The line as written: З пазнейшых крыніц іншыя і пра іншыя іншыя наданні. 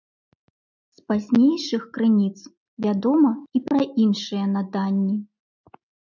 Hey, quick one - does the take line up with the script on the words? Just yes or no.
no